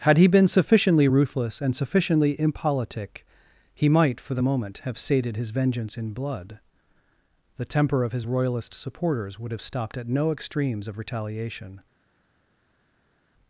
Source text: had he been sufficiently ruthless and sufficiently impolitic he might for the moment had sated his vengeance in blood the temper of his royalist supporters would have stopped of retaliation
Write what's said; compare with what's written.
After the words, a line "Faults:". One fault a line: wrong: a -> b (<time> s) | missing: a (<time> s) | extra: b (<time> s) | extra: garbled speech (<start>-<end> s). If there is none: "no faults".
had he been sufficiently ruthless and sufficiently impolitic he might for the moment have sated his vengeance in blood the temper of his royalist supporters would have stopped at no extremes of retaliation
Faults:
wrong: had -> have (4.8 s)
extra: at no extremes (10.0 s)